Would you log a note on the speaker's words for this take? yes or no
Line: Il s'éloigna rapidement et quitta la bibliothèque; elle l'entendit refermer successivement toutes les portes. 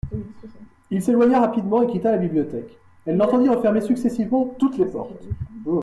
no